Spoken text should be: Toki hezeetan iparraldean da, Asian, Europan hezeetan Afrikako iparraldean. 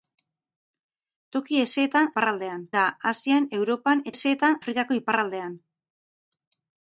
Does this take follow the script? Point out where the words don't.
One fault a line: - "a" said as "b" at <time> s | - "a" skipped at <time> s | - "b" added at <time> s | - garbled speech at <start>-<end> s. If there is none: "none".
none